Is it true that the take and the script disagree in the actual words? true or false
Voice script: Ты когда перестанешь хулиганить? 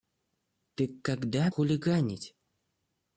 true